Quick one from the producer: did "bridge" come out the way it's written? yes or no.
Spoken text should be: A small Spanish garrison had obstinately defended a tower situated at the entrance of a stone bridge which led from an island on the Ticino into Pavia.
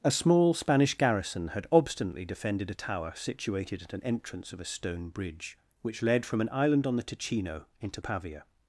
yes